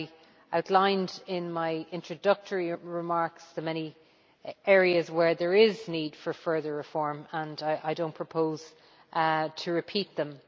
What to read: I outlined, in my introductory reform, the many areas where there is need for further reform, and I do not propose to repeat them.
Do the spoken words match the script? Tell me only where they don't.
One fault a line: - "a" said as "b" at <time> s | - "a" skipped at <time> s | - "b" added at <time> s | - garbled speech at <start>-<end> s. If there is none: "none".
- "reform" said as "remarks" at 2.7 s